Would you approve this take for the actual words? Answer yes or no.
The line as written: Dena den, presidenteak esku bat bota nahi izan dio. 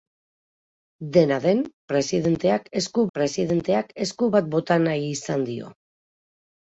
no